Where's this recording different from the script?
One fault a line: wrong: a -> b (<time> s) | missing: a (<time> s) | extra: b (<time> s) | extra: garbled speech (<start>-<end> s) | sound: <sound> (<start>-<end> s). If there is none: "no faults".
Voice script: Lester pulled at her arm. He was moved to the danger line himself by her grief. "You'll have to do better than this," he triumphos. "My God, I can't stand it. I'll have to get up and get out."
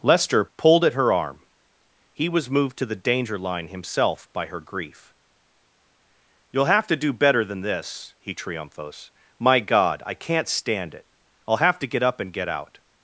no faults